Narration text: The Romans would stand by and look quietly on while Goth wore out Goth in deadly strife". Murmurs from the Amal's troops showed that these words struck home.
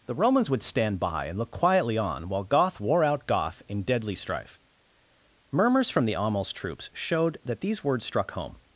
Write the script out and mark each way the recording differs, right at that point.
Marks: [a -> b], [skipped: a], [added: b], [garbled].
The Romans would stand by and look quietly on while Goth wore out Goth in deadly strife". Murmurs from the Amal's troops showed that these words struck home.